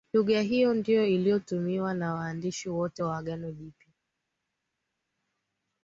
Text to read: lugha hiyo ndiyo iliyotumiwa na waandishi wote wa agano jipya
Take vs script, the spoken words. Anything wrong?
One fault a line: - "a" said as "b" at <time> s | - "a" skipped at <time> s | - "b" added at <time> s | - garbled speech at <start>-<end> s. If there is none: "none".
none